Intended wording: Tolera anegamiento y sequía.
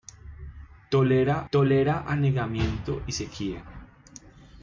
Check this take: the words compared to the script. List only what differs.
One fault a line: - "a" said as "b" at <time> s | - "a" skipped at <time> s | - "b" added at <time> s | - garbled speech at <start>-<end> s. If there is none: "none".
- "tolera" added at 1.5 s